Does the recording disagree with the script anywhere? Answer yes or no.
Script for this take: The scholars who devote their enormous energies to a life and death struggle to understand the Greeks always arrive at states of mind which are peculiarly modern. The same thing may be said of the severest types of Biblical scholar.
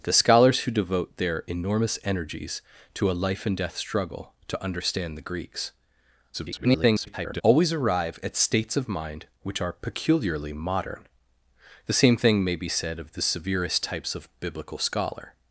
yes